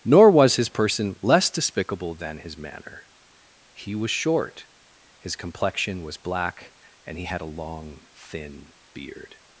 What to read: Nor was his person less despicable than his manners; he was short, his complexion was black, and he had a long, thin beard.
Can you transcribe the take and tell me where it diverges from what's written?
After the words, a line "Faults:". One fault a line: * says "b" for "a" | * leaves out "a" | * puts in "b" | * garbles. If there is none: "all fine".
Nor was his person less despicable than his manner; he was short, his complexion was black, and he had a long, thin beard.
Faults:
* says "manner" for "manners"